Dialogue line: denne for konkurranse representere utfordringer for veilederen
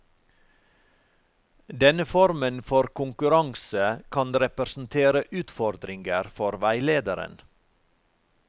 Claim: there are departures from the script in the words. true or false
true